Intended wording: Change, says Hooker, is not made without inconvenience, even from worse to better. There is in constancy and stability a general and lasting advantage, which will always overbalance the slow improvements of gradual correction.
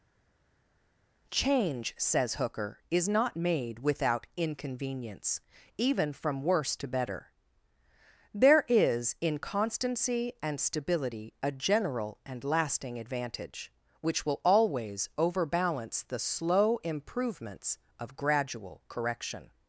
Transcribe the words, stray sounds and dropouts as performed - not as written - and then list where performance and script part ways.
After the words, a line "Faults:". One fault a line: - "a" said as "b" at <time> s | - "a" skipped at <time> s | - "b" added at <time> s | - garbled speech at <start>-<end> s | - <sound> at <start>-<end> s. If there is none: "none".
Change, says Hooker, is not made without inconvenience, even from worse to better. There is in constancy and stability a general and lasting advantage, which will always overbalance the slow improvements of gradual correction.
Faults:
none